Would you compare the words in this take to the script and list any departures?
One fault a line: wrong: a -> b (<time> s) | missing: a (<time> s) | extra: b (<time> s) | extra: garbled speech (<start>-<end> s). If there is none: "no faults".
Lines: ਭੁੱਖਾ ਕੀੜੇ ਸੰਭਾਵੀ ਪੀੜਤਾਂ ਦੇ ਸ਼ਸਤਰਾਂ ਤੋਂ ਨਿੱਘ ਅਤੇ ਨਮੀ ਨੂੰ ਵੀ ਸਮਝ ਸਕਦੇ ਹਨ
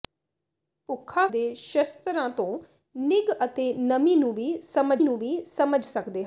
missing: ਕੀੜੇ ਸੰਭਾਵੀ ਪੀੜਤਾਂ (1.3 s)
extra: ਨੂੰ ਵੀ ਸਮਝ (5.0 s)